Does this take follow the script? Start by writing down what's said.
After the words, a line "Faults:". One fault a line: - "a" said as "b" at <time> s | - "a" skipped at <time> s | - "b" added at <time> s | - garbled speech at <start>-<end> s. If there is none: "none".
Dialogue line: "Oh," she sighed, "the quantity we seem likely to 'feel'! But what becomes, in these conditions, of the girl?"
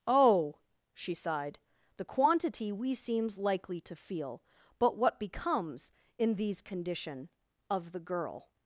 "Oh," she sighed, "the quantity we seems likely to 'feel'! But what becomes, in these condition, of the girl?"
Faults:
- "seem" said as "seems" at 2.9 s
- "conditions" said as "condition" at 6.6 s